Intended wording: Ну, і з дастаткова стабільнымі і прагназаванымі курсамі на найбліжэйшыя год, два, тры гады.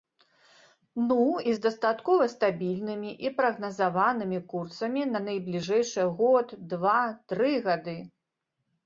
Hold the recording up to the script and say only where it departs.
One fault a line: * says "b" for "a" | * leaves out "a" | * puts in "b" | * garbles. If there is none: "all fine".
all fine